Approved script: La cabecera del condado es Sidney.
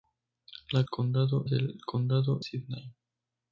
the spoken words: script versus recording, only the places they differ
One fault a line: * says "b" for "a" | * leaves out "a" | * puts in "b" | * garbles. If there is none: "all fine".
* says "condado" for "cabecera"
* leaves out "es"